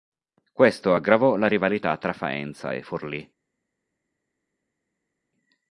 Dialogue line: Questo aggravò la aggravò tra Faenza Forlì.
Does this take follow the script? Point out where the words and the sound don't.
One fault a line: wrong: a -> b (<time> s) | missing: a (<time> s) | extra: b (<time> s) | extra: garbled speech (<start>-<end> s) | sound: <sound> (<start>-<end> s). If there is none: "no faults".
wrong: aggravò -> rivalità (1.5 s)
extra: e (2.7 s)